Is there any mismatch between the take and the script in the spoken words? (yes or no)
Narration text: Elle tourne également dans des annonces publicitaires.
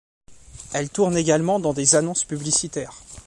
no